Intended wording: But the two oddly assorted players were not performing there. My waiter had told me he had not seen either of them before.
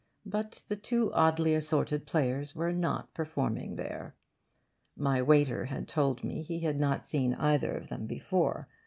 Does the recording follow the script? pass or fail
pass